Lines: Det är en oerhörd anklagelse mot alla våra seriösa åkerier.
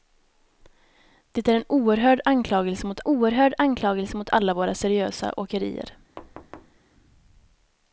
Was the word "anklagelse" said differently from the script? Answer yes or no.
no